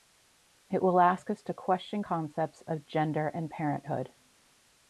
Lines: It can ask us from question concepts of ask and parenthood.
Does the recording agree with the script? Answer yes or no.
no